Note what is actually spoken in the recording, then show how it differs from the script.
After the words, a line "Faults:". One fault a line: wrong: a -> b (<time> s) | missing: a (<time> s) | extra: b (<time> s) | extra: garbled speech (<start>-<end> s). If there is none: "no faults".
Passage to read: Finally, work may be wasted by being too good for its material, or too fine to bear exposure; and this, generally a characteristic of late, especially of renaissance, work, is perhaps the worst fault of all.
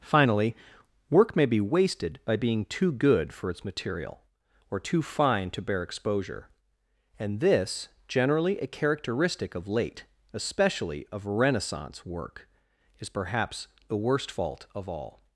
Finally, work may be wasted by being too good for its material, or too fine to bear exposure; and this, generally a characteristic of late, especially of renaissance, work, is perhaps the worst fault of all.
Faults:
no faults